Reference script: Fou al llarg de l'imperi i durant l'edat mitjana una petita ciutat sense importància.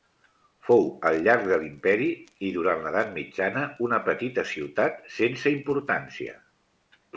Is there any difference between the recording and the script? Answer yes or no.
no